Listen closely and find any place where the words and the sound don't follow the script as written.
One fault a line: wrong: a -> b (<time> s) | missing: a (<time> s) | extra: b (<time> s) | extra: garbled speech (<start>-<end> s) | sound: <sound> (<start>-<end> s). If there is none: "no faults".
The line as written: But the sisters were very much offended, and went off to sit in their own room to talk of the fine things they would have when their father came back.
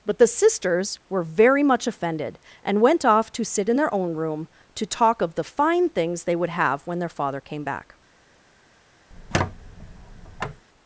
sound: squeak (9.1-10.6 s)